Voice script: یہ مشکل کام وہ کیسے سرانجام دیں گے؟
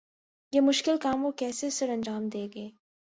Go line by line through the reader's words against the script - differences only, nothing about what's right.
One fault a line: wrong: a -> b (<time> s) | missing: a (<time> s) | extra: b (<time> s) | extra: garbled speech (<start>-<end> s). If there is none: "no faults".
no faults